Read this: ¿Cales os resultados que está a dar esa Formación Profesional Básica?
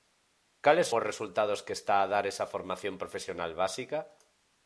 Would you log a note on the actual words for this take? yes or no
no